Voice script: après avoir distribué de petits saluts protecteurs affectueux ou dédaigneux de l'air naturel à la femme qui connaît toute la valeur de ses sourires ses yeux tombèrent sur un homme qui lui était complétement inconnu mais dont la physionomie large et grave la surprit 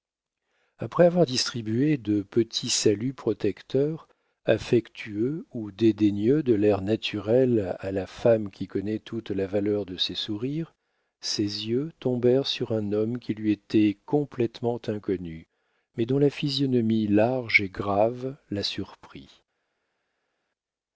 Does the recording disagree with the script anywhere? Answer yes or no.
no